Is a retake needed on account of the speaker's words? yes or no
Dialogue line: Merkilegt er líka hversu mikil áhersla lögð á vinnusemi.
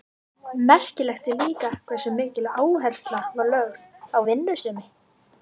yes